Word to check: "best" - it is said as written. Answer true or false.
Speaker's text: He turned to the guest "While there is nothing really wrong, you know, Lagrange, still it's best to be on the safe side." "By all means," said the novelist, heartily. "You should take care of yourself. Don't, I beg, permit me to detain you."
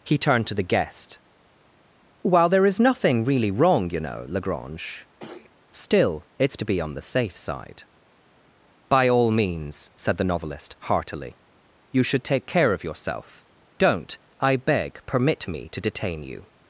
false